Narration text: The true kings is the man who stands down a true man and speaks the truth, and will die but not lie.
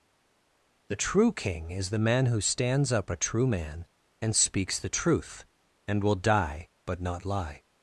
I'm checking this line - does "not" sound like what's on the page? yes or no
yes